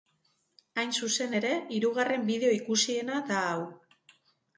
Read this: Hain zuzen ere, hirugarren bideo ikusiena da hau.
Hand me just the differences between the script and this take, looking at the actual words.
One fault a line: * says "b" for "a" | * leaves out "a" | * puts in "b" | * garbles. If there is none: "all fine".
all fine